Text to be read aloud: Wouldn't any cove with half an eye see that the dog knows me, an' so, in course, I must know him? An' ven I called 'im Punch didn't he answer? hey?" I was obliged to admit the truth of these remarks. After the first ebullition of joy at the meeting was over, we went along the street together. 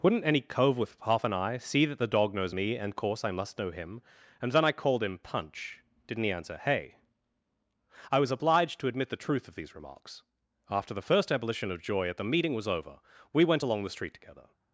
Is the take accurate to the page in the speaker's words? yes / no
no